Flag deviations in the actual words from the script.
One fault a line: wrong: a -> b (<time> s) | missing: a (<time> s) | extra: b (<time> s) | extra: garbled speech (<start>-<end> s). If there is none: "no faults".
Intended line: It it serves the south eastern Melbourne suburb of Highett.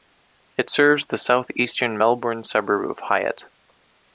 missing: it (0.7 s)